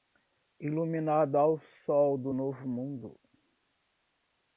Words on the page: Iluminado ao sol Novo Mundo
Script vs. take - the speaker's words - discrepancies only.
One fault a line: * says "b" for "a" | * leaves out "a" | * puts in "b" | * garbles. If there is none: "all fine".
* puts in "do"